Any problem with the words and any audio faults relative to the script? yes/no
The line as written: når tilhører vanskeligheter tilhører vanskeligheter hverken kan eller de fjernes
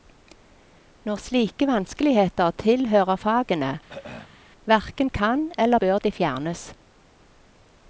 yes